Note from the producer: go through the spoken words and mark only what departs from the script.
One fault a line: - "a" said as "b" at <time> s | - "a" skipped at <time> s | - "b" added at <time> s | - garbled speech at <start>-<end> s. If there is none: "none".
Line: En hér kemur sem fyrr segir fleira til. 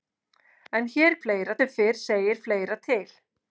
- "kemur" said as "fleira" at 1.2 s